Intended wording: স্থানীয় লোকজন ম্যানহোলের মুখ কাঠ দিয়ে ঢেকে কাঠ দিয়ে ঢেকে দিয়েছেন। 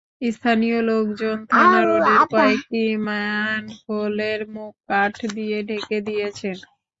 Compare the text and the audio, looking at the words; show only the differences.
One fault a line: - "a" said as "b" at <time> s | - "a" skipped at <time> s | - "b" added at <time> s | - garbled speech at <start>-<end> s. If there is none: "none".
- "ম্যানহোলের মুখ কাঠ দিয়ে ঢেকে" said as "থানা রোডের কয়েকটি ম্যানহোলের মুখ" at 1.5 s